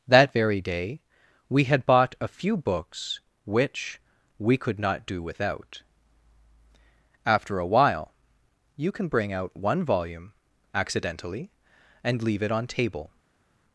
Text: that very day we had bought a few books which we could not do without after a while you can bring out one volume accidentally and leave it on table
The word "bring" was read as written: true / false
true